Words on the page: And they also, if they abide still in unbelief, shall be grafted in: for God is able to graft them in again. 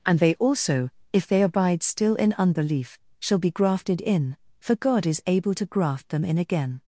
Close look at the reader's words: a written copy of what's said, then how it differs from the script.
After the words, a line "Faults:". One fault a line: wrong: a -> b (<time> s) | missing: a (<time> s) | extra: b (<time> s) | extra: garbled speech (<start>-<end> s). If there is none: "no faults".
And they also, if they abide still in unbelief, shall be grafted in: for God is able to graft them in again.
Faults:
no faults